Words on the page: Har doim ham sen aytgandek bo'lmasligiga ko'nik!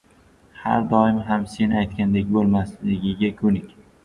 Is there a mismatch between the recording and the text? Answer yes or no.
no